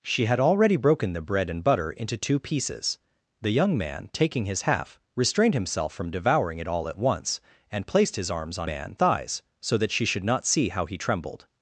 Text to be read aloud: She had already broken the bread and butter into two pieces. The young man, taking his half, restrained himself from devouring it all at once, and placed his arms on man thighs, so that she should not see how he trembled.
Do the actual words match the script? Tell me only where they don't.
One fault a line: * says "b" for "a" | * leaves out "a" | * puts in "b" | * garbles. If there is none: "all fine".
all fine